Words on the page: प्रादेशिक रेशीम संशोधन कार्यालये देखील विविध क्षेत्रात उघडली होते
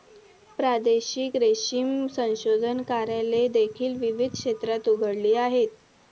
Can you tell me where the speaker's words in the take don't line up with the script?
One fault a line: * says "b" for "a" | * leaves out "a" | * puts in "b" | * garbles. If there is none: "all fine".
* says "आहेत" for "होते"